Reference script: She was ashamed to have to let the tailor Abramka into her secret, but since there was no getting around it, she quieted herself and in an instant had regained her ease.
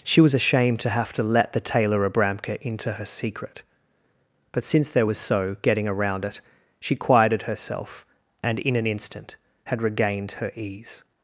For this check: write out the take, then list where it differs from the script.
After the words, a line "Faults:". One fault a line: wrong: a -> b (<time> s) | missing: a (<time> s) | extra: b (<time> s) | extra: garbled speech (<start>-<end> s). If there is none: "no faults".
She was ashamed to have to let the tailor Abramka into her secret, but since there was so getting around it, she quieted herself and in an instant had regained her ease.
Faults:
wrong: no -> so (5.2 s)